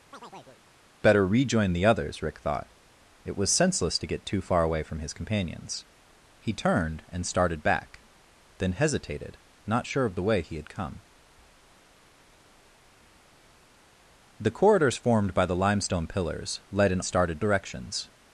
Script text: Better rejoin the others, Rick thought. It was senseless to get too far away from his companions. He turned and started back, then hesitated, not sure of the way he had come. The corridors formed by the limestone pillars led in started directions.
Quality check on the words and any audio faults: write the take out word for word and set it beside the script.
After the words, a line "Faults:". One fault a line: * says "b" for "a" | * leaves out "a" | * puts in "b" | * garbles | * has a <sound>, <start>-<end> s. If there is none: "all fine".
Better rejoin the others, Rick thought. It was senseless to get too far away from his companions. He turned and started back, then hesitated, not sure of the way he had come. The corridors formed by the limestone pillars led in started directions.
Faults:
* has a chirp, 0.1-0.6 s